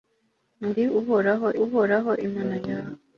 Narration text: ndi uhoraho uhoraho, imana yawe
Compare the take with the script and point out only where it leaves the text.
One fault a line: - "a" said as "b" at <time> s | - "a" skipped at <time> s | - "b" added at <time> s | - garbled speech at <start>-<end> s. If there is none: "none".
none